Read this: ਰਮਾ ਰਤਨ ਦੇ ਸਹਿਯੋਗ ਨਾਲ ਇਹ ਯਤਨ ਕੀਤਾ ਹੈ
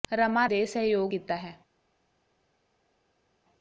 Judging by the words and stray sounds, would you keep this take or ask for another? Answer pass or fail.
fail